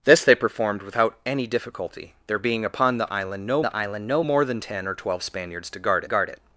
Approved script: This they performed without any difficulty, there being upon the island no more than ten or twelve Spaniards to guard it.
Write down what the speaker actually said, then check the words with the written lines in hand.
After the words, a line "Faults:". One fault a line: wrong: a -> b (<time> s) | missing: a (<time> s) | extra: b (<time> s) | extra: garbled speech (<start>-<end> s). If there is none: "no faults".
This they performed without any difficulty, there being upon the island no the island no more than ten or twelve Spaniards to guard guard it.
Faults:
extra: the island no (3.6 s)
extra: guard (6.0 s)